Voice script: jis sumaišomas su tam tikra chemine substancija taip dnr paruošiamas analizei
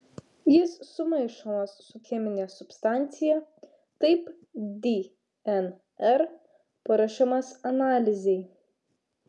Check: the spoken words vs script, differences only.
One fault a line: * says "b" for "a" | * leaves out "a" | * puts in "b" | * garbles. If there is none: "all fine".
* leaves out "tam tikra"